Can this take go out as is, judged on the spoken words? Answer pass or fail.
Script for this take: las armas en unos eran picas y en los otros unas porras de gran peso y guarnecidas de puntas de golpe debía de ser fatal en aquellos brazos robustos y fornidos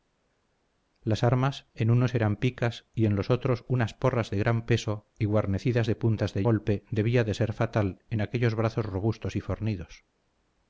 pass